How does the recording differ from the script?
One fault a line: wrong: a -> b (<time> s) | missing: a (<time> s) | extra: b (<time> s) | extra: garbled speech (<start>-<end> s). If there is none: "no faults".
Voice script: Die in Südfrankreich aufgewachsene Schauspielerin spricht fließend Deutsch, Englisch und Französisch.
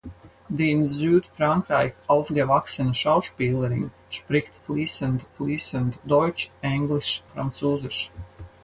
extra: fließend (5.3 s)
missing: und (7.2 s)